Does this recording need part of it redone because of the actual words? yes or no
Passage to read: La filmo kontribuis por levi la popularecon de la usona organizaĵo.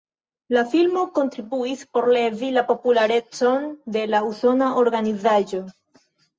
no